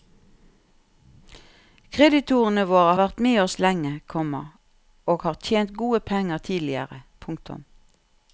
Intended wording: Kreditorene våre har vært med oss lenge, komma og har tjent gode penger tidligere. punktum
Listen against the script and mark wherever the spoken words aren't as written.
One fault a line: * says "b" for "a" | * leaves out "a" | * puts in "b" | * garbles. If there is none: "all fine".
* leaves out "har"